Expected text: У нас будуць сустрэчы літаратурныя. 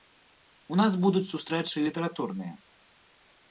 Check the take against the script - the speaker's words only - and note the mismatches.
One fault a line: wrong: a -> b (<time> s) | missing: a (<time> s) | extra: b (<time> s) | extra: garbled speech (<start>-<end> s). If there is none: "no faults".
no faults